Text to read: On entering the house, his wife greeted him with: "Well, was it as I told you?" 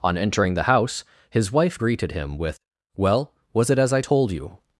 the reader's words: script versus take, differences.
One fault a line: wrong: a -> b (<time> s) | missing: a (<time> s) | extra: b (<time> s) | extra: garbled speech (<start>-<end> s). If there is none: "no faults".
no faults